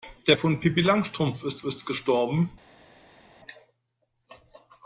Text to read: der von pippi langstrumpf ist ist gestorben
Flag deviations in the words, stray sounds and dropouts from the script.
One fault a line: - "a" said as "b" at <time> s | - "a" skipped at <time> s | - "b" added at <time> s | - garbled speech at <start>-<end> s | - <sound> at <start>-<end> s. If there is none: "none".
none